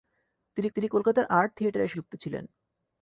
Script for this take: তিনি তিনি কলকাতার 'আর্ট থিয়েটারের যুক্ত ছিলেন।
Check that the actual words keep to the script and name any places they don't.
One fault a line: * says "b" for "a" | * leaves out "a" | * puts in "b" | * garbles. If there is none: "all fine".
all fine